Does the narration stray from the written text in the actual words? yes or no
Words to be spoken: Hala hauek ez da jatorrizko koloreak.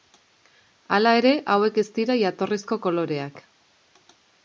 yes